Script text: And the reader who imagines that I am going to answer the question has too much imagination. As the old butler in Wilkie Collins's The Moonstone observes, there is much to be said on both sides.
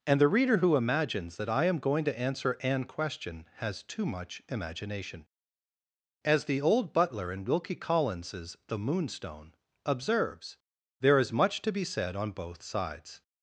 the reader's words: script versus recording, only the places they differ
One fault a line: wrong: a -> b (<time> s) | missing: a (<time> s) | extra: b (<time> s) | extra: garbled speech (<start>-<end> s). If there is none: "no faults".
wrong: the -> an (2.6 s)